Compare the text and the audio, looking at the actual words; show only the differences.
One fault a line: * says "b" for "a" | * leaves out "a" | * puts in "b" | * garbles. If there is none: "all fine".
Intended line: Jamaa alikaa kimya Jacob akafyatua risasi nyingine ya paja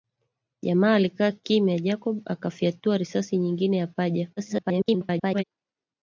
* garbles